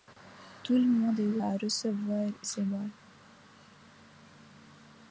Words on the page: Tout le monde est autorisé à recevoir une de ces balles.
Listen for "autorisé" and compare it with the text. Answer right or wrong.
wrong